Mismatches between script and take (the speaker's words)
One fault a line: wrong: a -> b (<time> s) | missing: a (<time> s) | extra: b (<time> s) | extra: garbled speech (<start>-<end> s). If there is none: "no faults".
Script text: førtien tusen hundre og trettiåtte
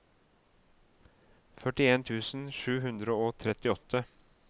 extra: sju (2.6 s)